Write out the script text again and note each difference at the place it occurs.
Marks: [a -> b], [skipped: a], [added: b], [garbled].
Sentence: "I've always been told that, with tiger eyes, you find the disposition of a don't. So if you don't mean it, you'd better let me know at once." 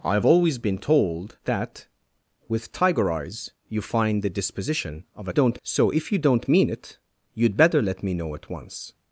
"I've always been told that, with tiger eyes, you find the disposition of a don't. So if you don't mean it, you'd better let me know at once."